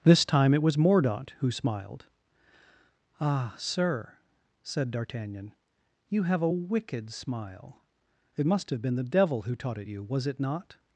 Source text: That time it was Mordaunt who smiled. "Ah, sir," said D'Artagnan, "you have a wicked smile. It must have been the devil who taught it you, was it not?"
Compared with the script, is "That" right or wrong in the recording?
wrong